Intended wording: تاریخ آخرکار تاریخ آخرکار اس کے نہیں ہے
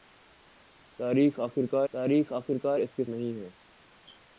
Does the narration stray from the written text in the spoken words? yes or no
no